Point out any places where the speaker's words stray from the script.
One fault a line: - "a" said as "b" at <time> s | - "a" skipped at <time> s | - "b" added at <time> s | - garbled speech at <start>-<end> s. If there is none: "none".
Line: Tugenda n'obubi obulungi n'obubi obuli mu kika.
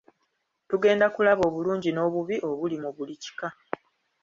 - "n'obubi" said as "kulaba" at 1.1 s
- "buli" added at 3.0 s